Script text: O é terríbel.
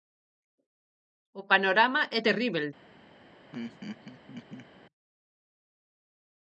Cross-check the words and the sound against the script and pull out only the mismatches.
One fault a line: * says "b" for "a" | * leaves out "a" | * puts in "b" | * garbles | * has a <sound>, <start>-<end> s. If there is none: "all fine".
* puts in "panorama"
* has a laugh, 3.5-4.7 s